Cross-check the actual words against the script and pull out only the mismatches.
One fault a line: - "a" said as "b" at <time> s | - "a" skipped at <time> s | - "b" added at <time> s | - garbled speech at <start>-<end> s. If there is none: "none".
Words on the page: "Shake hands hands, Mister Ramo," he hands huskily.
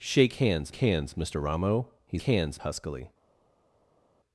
none